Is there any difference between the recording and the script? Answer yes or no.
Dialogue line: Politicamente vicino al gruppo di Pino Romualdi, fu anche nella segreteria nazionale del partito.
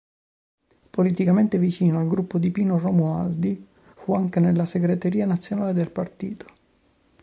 no